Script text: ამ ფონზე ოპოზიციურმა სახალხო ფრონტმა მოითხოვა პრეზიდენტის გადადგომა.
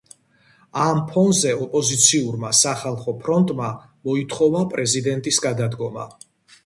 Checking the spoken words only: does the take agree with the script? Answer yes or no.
yes